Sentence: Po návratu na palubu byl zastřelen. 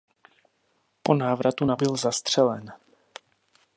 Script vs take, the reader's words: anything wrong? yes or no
yes